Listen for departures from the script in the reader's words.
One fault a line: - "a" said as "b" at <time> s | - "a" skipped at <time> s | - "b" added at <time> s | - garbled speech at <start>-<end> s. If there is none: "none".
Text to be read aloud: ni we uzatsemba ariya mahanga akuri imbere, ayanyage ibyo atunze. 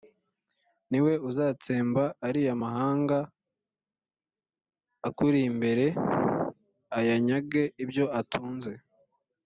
none